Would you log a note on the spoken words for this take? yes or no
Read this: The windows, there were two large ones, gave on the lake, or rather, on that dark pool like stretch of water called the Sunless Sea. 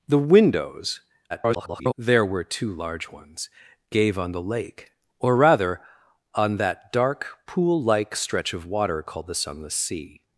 yes